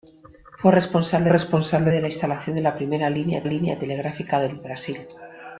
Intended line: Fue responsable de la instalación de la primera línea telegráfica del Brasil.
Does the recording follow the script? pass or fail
fail